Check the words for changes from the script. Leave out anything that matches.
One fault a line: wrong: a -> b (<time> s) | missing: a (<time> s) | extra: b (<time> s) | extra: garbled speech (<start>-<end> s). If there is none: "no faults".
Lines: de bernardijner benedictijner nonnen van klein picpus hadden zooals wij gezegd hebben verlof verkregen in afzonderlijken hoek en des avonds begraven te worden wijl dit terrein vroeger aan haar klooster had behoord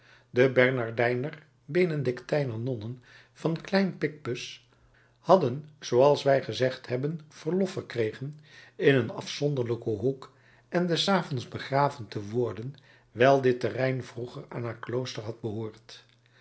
extra: een (8.9 s)